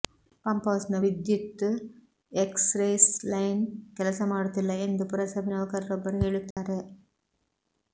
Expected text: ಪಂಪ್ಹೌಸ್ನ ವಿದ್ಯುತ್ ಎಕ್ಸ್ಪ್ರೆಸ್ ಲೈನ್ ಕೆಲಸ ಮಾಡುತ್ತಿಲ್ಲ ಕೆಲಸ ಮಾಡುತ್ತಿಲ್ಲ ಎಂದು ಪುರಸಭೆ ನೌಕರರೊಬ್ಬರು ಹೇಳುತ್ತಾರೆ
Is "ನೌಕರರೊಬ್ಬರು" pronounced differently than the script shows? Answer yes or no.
no